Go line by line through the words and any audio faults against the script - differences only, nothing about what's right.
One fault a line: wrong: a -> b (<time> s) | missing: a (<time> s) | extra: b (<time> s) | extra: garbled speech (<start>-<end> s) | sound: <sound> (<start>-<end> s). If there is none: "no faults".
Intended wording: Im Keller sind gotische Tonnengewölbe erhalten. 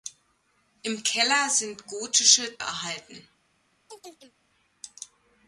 missing: Tonnengewölbe (2.6 s)
sound: chirp (3.9-4.3 s)